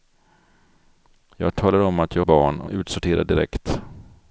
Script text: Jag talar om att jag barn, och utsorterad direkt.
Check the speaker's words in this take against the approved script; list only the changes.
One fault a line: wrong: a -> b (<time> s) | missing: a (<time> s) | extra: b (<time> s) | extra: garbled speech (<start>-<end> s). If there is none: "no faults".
no faults